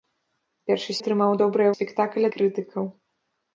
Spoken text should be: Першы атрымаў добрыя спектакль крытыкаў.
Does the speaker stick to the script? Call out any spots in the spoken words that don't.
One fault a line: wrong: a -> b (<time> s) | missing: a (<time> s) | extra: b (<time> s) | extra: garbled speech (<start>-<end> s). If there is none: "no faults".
no faults